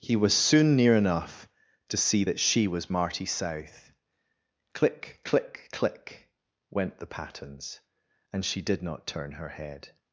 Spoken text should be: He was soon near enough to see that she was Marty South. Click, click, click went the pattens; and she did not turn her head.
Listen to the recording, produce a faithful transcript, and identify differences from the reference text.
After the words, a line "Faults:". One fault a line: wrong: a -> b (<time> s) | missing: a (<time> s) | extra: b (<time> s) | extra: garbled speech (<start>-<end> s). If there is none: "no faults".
He was soon near enough to see that she was Marty South. Click, click, click went the pattens; and she did not turn her head.
Faults:
no faults